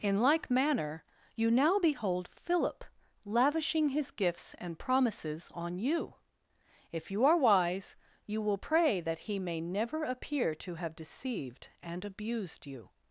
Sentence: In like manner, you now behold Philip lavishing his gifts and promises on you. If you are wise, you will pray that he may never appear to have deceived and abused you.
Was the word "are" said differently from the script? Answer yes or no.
no